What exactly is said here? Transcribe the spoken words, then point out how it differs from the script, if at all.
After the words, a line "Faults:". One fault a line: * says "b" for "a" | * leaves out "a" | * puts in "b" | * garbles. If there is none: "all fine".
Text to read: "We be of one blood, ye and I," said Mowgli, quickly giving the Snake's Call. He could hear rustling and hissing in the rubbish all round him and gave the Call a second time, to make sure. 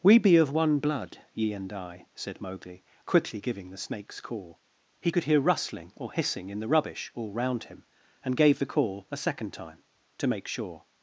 "We be of one blood, ye and I," said Mowgli, quickly giving the Snake's Call. He could hear rustling or hissing in the rubbish all round him and gave the Call a second time, to make sure.
Faults:
* says "or" for "and"